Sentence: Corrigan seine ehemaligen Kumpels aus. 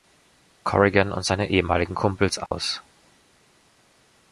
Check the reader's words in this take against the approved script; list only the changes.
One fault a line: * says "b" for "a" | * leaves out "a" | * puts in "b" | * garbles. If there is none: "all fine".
* puts in "und"